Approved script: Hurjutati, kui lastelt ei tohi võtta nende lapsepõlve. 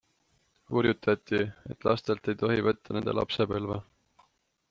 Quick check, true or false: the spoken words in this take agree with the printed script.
false